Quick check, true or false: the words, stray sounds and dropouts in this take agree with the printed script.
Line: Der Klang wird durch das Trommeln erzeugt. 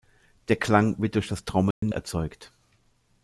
false